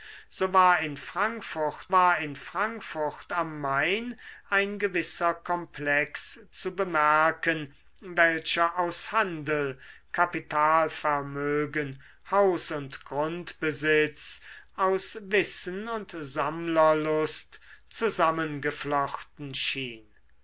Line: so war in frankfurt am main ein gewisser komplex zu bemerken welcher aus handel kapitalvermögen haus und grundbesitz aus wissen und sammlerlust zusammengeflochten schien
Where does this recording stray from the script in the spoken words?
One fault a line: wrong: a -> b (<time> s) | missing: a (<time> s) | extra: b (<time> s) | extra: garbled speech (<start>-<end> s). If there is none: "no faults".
extra: war in frankfurt (1.9 s)